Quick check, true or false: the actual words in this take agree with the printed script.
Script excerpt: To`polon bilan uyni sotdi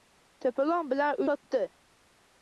false